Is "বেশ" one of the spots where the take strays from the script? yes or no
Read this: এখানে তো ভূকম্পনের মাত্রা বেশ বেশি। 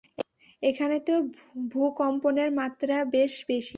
no